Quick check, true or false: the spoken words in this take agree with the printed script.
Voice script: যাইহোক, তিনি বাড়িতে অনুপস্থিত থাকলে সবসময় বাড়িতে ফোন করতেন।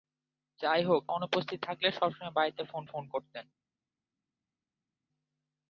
false